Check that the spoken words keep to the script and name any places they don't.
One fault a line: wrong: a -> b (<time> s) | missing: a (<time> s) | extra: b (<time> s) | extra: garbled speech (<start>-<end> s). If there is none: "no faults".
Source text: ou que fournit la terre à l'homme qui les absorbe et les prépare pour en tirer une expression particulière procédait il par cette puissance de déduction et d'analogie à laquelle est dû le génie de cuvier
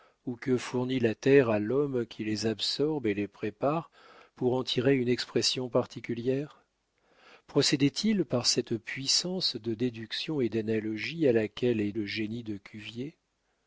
missing: dû (11.9 s)